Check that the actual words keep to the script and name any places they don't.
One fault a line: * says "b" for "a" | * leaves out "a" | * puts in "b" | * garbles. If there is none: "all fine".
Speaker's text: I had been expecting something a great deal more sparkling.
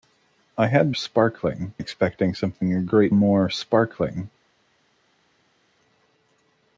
* says "sparkling" for "been"
* leaves out "deal"